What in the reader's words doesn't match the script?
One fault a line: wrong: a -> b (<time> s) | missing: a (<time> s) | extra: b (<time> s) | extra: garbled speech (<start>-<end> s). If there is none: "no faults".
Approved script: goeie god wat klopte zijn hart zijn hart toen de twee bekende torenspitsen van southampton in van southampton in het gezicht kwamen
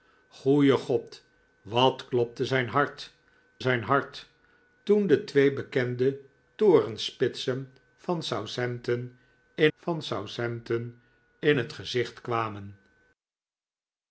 no faults